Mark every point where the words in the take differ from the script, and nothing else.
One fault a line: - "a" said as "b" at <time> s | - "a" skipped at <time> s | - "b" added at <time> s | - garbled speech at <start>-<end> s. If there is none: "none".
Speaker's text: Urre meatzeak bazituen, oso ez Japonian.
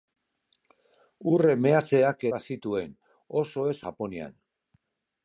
none